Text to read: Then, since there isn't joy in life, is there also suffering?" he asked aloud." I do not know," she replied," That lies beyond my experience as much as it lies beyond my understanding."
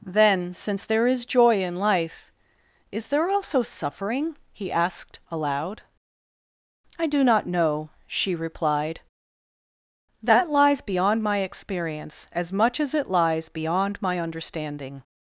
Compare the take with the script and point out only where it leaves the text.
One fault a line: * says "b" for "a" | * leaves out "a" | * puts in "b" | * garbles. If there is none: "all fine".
* says "is" for "isn't"